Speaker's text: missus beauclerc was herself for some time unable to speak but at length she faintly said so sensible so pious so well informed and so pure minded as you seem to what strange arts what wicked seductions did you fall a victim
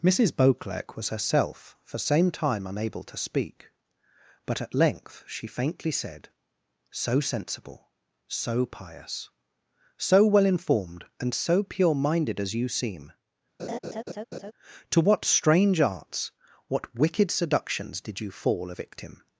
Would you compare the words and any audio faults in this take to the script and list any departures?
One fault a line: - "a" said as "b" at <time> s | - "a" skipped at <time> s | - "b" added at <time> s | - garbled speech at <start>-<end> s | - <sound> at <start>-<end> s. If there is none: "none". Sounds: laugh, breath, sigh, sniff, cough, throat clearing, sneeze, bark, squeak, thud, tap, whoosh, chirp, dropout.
- "some" said as "same" at 2.0 s
- laugh at 13.6-14.5 s